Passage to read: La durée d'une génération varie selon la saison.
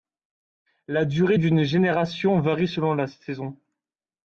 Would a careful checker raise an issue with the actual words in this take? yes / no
no